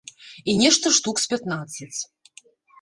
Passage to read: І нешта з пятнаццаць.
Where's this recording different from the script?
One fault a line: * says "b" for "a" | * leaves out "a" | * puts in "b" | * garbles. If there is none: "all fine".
* puts in "штук"